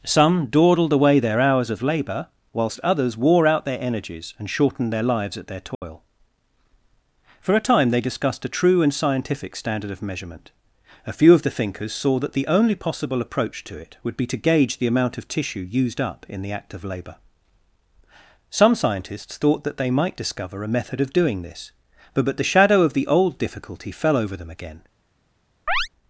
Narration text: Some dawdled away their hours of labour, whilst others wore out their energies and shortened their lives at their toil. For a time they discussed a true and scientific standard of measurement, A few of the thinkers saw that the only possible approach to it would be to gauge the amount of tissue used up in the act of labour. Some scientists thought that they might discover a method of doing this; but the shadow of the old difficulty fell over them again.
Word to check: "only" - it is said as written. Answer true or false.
true